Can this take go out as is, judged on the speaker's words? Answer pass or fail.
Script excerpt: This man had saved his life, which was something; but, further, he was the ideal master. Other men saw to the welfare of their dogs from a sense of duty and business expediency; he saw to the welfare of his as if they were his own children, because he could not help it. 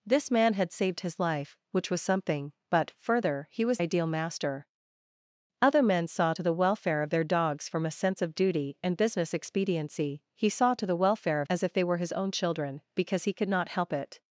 fail